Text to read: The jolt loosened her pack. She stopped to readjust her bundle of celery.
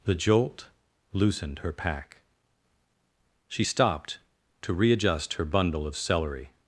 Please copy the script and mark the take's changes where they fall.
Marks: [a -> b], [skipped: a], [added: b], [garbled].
The jolt loosened her pack. She stopped to readjust her bundle of celery.